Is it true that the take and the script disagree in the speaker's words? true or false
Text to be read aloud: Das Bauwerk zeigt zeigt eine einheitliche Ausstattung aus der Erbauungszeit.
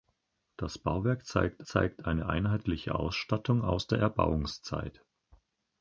false